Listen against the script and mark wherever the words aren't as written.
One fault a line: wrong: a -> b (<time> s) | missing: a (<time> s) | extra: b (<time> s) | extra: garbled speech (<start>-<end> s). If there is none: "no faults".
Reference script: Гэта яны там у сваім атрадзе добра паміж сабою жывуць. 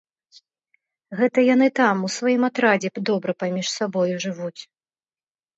no faults